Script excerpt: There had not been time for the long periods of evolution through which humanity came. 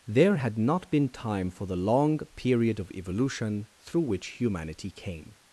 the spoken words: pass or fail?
fail